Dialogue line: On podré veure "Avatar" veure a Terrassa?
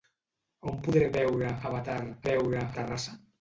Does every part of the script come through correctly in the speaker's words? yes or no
yes